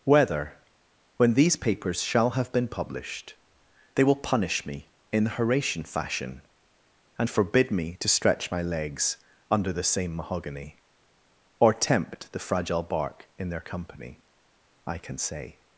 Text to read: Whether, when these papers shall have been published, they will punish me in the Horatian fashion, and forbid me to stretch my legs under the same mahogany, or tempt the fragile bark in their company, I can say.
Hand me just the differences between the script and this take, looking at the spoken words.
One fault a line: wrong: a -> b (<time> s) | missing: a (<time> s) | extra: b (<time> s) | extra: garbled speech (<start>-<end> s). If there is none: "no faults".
no faults